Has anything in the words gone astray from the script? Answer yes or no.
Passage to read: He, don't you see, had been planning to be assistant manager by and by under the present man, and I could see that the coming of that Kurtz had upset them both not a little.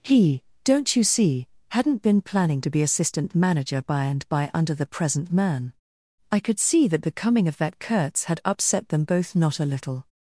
yes